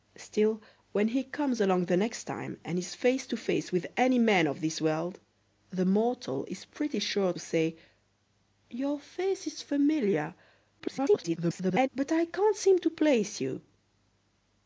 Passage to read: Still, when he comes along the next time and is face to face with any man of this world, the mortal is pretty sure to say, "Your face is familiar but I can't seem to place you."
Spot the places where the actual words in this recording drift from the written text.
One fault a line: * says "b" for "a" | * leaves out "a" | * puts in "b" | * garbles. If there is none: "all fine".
* leaves out "to"
* garbles